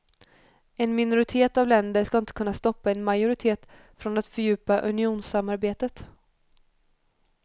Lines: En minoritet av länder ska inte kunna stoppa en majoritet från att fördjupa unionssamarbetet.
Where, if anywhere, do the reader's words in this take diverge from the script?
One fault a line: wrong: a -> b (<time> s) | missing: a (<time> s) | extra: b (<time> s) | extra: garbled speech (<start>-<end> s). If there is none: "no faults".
no faults